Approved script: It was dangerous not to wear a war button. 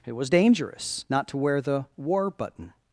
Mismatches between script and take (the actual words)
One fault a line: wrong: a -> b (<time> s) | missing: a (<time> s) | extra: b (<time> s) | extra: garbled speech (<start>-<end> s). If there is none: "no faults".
wrong: a -> the (1.6 s)